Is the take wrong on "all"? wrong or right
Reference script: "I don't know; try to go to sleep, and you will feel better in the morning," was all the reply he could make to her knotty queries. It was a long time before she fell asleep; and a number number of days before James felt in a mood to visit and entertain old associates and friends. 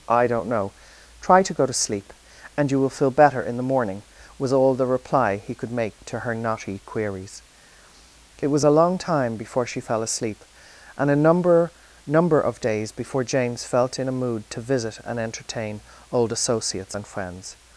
right